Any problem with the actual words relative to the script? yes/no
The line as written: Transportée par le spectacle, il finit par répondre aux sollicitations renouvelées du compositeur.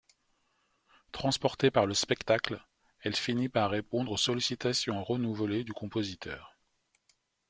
yes